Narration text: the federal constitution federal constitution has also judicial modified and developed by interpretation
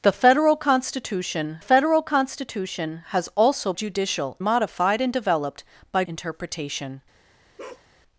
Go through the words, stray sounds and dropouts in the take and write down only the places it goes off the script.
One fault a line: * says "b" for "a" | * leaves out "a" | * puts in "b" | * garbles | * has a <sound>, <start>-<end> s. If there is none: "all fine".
* has a bark, 7.6-7.9 s